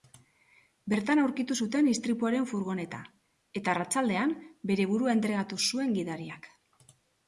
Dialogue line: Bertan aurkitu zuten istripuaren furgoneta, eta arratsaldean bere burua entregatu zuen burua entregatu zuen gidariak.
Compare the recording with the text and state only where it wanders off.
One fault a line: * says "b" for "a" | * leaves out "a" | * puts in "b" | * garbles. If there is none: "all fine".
* leaves out "burua entregatu zuen"